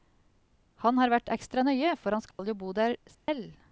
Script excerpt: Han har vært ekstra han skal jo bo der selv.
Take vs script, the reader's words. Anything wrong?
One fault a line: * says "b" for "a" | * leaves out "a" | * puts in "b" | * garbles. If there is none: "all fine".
* puts in "nøye for"